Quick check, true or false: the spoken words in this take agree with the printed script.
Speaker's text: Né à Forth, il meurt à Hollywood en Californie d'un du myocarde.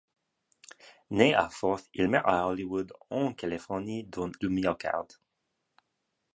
true